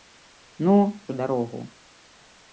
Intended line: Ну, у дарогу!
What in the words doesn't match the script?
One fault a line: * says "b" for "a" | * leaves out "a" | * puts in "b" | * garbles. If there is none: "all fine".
all fine